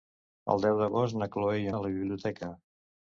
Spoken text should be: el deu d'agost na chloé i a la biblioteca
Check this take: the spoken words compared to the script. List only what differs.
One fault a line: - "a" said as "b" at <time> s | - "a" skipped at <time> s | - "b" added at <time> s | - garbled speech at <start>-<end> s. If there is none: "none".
none